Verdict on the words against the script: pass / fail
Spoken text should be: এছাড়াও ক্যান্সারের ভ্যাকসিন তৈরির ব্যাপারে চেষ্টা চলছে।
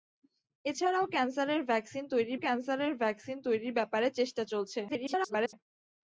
fail